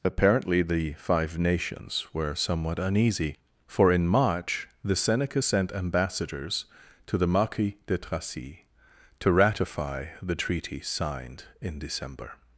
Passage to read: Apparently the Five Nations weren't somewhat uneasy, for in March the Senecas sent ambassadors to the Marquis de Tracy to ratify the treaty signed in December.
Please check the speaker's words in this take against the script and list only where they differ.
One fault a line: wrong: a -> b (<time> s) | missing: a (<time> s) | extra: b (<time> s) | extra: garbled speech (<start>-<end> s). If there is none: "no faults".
wrong: weren't -> were (2.1 s)